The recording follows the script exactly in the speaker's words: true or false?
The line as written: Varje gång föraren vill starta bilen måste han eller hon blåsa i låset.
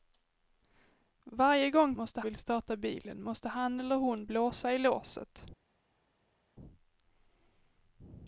false